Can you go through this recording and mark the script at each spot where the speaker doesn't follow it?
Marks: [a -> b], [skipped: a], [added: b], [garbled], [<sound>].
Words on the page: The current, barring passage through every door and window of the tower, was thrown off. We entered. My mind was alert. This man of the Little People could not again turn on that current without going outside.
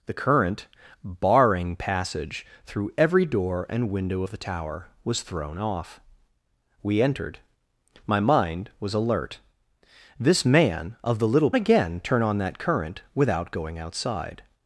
The current, barring passage through every door and window of the tower, was thrown off. We entered. My mind was alert. This man of the Little [skipped: People could not] again turn on that current without going outside.